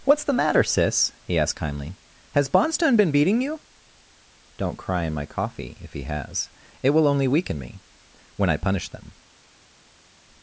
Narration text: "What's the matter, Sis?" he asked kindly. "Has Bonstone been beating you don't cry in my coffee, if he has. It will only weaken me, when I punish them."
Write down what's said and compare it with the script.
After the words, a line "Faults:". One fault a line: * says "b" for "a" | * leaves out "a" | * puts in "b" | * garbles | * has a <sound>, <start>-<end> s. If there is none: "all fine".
"What's the matter, Sis?" he asked kindly. "Has Bonstone been beating you don't cry in my coffee, if he has. It will only weaken me, when I punish them."
Faults:
all fine